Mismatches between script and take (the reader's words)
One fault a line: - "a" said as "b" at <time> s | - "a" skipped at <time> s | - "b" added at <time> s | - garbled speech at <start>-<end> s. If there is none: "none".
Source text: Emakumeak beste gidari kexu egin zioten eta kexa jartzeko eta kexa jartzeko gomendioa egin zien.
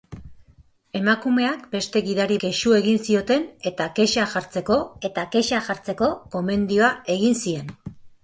none